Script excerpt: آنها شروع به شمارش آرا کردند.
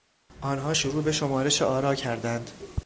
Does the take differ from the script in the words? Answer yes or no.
no